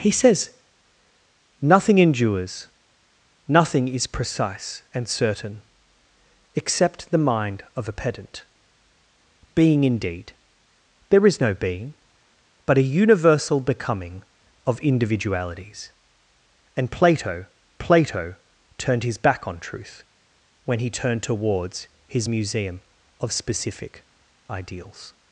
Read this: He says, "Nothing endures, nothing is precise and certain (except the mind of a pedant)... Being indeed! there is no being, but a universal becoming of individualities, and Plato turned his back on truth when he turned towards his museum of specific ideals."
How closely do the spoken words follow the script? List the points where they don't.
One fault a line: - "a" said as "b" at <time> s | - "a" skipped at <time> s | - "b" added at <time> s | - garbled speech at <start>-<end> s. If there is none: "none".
- "Plato" added at 17.8 s